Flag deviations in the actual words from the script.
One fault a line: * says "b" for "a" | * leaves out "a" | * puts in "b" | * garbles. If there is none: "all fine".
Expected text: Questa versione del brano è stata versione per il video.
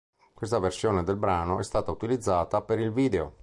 * says "utilizzata" for "versione"